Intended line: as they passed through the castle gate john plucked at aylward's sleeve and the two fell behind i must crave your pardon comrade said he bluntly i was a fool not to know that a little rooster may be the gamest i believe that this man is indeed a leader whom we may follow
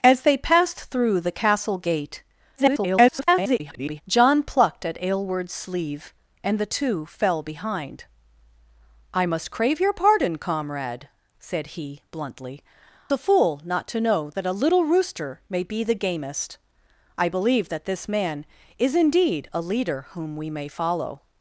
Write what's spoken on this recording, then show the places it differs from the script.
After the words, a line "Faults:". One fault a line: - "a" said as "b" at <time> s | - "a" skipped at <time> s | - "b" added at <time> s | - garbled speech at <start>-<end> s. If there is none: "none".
as they passed through the castle gate [garbled] john plucked at aylward's sleeve and the two fell behind i must crave your pardon comrade said he bluntly a fool not to know that a little rooster may be the gamest i believe that this man is indeed a leader whom we may follow
Faults:
- garbled speech at 2.6-4.0 s
- "i was" skipped at 12.6 s